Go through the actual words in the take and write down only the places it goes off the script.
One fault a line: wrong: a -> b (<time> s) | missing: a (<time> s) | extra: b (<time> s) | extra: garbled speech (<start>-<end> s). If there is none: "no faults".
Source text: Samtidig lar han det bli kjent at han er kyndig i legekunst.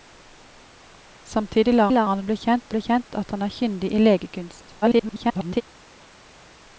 extra: lar (1.9 s)
extra: bli kjent (2.7 s)
extra: garbled speech (4.8-5.6 s)